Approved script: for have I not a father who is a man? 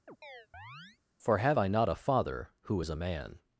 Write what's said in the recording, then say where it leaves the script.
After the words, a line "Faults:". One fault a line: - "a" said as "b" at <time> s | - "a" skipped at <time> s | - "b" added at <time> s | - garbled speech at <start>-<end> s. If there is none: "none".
for have I not a father who is a man?
Faults:
none